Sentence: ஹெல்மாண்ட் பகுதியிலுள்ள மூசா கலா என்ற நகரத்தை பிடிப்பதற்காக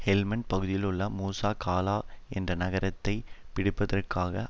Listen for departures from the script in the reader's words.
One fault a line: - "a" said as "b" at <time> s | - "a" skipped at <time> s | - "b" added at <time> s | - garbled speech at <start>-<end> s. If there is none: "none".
none